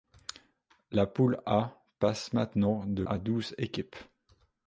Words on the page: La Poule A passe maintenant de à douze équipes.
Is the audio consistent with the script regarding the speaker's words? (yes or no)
yes